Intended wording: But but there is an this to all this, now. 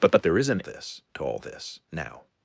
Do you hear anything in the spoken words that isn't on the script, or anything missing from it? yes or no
no